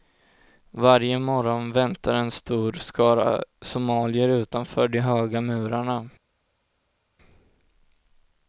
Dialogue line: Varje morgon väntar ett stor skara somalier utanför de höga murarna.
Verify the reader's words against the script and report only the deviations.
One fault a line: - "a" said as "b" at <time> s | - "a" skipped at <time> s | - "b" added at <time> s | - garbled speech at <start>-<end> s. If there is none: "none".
- "ett" said as "en" at 2.1 s